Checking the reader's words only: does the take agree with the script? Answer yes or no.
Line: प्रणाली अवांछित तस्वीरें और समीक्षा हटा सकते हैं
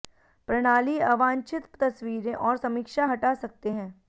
yes